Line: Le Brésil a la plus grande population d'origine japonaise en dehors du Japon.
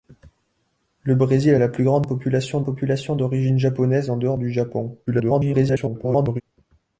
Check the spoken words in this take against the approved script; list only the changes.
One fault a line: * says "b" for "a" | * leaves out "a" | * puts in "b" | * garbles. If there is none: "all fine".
* puts in "population"
* garbles